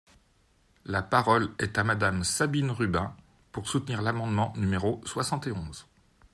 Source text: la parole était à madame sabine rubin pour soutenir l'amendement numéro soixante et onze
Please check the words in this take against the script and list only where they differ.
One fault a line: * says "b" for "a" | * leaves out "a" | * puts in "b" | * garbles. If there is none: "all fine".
* says "est" for "était"